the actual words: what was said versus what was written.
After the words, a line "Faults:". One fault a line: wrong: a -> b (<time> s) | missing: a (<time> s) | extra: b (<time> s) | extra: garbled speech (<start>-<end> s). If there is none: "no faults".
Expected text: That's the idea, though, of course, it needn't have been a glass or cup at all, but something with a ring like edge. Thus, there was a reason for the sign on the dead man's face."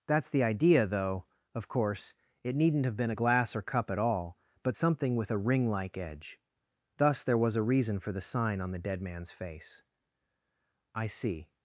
That's the idea, though, of course, it needn't have been a glass or cup at all, but something with a ring like edge. Thus, there was a reason for the sign on the dead man's face." "I see
Faults:
extra: I see (10.9 s)